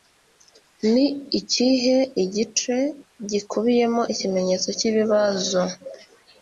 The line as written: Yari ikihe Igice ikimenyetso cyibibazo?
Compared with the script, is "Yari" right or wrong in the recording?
wrong